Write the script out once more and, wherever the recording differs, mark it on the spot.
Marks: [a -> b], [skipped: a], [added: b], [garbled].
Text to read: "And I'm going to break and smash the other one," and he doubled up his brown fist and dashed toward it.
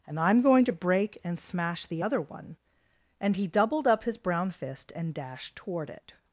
"And I'm going to break and smash the other one," and he doubled up his brown fist and dashed toward it.